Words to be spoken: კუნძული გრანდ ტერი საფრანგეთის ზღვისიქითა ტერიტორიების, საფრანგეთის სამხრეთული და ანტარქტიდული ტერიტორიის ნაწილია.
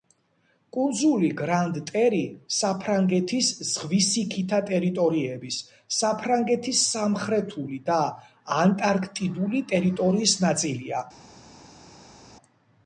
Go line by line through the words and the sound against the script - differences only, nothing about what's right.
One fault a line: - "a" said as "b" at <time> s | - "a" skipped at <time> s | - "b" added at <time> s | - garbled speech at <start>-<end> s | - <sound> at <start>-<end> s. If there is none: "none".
none